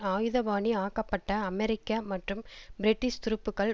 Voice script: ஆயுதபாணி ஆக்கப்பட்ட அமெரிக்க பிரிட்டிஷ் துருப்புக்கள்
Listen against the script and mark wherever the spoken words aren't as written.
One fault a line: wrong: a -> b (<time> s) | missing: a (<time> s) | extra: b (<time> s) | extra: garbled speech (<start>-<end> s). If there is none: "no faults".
extra: மற்றும் (2.0 s)